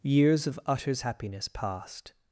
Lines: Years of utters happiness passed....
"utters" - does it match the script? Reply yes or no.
yes